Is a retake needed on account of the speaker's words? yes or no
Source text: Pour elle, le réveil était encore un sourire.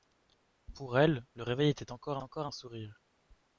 yes